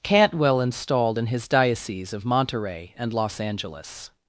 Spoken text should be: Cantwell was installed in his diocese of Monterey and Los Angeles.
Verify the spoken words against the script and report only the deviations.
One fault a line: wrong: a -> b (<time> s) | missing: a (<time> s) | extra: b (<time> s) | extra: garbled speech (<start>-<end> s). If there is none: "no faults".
missing: was (0.6 s)